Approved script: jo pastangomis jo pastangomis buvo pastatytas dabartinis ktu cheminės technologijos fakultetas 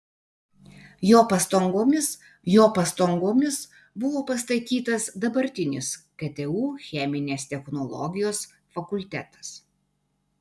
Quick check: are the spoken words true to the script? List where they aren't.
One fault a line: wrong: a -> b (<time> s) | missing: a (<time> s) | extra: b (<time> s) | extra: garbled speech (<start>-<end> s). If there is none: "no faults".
no faults